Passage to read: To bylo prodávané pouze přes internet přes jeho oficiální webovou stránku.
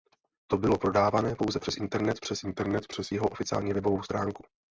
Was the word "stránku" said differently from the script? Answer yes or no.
no